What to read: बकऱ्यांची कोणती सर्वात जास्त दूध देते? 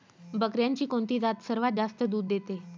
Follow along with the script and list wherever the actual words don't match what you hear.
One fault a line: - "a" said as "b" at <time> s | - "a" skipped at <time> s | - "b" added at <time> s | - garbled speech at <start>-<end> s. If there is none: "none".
- "जात" added at 1.2 s